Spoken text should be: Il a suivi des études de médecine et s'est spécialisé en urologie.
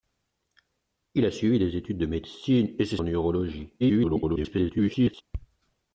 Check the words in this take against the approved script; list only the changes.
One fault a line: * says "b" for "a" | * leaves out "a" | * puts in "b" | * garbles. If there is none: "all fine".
* leaves out "spécialisé"
* garbles